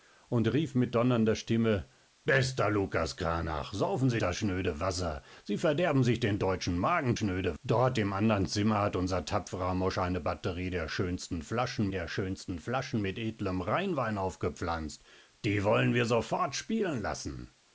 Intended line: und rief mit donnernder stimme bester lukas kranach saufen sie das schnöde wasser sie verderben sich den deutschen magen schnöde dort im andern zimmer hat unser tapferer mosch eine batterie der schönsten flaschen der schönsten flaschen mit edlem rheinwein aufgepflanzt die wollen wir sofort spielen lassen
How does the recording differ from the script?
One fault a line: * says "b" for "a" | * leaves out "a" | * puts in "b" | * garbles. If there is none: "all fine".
all fine